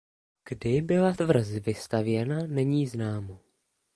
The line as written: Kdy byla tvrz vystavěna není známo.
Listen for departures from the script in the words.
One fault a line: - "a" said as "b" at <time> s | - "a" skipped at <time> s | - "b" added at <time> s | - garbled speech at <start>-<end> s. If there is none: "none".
none